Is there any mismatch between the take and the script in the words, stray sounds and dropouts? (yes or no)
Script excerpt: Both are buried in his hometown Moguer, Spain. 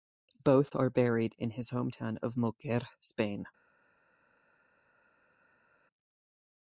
yes